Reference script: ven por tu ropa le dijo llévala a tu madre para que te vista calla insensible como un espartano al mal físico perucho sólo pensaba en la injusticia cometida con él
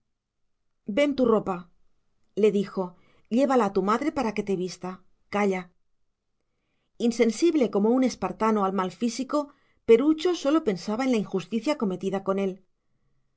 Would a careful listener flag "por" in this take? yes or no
yes